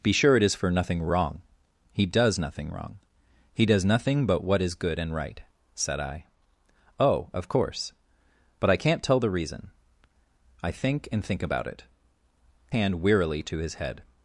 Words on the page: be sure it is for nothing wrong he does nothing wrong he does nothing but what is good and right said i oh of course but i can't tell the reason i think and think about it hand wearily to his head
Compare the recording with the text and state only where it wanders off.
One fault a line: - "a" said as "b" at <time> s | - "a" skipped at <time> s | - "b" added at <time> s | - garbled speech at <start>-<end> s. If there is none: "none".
none